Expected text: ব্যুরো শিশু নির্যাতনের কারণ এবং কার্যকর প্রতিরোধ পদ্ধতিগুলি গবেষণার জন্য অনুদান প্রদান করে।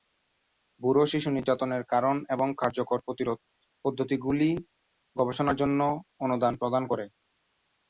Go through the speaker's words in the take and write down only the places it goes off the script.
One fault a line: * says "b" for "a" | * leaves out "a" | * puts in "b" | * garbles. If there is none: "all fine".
all fine